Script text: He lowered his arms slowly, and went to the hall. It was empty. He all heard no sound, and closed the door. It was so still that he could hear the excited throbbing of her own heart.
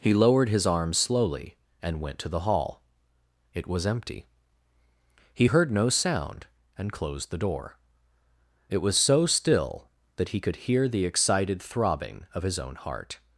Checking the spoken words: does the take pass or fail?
fail